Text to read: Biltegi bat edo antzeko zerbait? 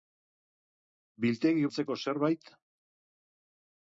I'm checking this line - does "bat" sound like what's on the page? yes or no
no